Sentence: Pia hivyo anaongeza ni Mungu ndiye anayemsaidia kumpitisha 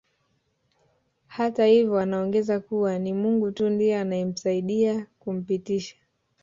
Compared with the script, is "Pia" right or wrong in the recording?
wrong